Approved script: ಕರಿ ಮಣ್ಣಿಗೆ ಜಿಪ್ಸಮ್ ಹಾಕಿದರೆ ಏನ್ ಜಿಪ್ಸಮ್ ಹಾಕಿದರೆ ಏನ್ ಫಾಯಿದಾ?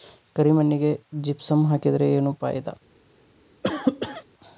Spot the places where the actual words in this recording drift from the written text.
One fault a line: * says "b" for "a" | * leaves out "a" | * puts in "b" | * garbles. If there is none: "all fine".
* leaves out "ಜಿಪ್ಸಮ್ ಹಾಕಿದರೆ ಏನ್"